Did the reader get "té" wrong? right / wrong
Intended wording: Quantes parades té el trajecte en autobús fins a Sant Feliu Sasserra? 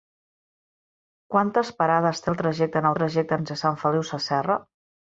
right